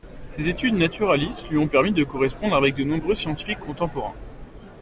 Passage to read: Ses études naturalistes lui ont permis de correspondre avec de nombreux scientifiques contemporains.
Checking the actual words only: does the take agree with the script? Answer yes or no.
yes